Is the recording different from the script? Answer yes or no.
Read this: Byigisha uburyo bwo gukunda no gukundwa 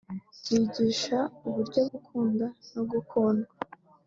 yes